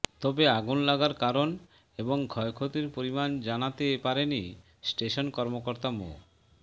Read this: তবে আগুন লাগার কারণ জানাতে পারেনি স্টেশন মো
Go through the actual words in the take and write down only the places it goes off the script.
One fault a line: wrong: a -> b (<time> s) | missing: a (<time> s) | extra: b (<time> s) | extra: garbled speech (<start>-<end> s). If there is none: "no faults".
extra: এবং ক্ষয়ক্ষতির পরিমাণ (2.0 s)
extra: কর্মকর্তা (5.3 s)